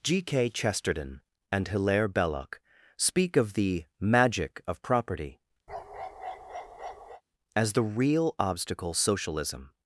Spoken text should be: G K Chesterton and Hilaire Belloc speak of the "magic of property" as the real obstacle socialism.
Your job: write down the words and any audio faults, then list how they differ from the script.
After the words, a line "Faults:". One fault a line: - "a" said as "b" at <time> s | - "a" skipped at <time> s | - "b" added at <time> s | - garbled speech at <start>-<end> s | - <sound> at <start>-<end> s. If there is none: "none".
G K Chesterton and Hilaire Belloc speak of the "magic of property" as the real obstacle socialism.
Faults:
- bark at 5.7-7.2 s